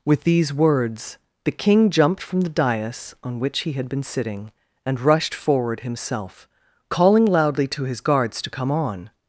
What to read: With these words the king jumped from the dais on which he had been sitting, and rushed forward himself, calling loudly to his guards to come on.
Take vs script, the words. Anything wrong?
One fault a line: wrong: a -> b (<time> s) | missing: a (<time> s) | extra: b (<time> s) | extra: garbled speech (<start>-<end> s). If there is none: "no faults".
no faults